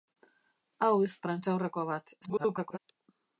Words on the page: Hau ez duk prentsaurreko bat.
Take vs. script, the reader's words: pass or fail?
fail